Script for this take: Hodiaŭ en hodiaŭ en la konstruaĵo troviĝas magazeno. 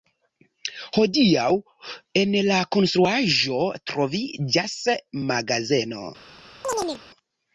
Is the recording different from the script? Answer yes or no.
yes